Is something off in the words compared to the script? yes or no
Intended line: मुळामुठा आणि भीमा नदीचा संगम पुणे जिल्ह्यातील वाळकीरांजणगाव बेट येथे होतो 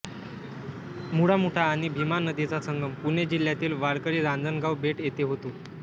no